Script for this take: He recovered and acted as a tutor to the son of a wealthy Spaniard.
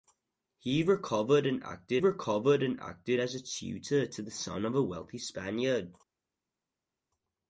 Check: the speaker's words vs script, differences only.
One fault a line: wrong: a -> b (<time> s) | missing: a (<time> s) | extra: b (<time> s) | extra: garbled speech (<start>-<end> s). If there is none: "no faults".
extra: recovered and acted (2.0 s)